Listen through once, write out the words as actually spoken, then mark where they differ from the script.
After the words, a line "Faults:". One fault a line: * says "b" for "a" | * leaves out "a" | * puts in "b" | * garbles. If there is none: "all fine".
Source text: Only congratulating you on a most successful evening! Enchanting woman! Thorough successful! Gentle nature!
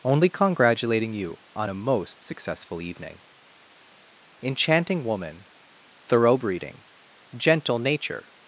Only congratulating you on a most successful evening! Enchanting woman! Thorough breeding! Gentle nature!
Faults:
* says "breeding" for "successful"